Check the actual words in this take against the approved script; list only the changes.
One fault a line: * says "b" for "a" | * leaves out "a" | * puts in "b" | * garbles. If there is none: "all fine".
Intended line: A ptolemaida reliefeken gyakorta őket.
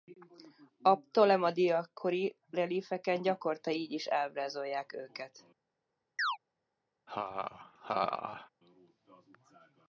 * puts in "kori"
* puts in "így is ábrázolják"